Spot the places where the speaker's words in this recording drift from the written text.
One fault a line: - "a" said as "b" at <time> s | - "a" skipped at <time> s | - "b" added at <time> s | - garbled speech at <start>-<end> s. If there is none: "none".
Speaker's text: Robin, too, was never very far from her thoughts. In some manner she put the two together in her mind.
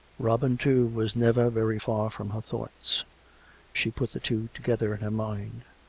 - "In some manner" skipped at 3.0 s